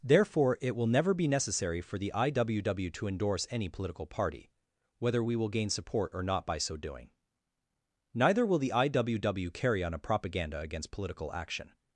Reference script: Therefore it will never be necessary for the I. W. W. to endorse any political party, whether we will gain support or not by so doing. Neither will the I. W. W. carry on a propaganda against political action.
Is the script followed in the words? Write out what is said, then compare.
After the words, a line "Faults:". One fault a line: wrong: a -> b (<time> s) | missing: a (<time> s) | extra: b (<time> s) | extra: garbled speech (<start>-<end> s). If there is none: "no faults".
Therefore it will never be necessary for the I. W. W. to endorse any political party, whether we will gain support or not by so doing. Neither will the I. W. W. carry on a propaganda against political action.
Faults:
no faults